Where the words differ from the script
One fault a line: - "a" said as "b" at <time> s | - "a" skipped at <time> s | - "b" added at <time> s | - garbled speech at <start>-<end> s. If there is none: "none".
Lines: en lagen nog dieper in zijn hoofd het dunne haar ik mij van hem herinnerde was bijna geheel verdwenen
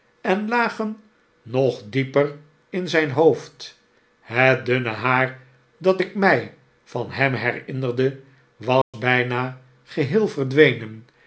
- "dat" added at 5.8 s